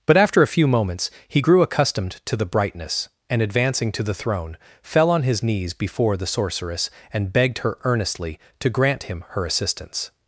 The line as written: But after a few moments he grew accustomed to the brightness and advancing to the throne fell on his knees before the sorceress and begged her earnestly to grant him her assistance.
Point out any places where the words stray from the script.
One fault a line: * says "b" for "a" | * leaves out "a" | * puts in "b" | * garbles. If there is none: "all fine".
all fine